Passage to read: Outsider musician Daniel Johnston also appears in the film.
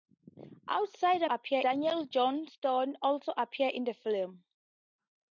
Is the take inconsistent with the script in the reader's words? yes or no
yes